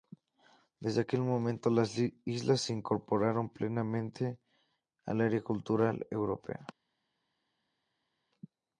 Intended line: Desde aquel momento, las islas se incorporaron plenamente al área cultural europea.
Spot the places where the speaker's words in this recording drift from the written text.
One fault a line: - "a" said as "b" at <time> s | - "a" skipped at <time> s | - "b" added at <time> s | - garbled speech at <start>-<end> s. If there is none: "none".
none